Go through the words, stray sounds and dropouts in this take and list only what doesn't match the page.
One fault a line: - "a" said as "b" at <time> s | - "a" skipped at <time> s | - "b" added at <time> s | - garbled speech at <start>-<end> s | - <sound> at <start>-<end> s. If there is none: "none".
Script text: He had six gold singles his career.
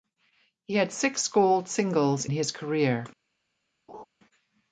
- laugh at 3.9-4.1 s